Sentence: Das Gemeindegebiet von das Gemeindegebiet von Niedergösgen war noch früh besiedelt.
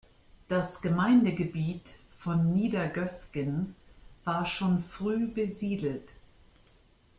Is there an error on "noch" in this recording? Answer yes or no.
yes